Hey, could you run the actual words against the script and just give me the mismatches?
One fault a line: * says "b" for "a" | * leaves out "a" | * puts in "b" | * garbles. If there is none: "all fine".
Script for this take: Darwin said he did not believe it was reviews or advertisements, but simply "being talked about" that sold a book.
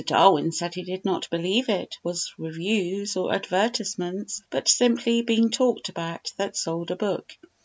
all fine